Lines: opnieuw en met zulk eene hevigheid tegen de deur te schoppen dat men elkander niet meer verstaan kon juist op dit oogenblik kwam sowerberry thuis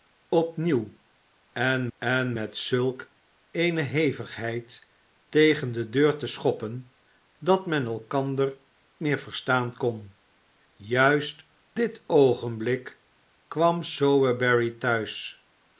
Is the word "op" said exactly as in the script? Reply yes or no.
no